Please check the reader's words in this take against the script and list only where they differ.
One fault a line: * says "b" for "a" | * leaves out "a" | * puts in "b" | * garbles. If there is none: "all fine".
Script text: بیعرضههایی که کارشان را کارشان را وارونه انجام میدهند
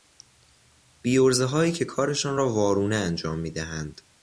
* leaves out "کارشان را"